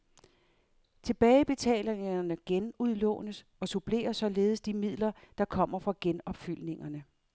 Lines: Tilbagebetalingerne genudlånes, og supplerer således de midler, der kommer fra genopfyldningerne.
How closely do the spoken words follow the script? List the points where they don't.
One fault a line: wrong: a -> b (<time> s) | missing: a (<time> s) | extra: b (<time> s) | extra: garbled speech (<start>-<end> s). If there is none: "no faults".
no faults